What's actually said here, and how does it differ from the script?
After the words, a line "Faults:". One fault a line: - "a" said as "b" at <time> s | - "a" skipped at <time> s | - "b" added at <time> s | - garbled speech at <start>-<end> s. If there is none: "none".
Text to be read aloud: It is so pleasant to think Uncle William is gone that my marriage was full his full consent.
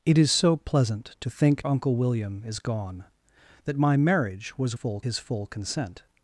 It is so pleasant to think Uncle William is gone that my marriage was full his full consent.
Faults:
none